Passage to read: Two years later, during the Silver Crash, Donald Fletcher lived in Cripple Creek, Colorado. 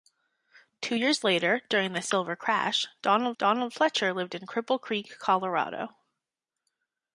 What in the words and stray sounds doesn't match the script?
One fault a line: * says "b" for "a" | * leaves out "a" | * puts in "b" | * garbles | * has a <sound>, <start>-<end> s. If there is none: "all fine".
* puts in "Donald"